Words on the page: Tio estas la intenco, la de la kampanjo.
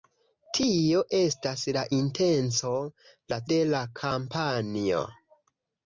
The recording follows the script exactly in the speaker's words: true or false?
true